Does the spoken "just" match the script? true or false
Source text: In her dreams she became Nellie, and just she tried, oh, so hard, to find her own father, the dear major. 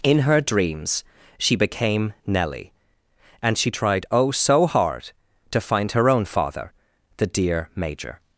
false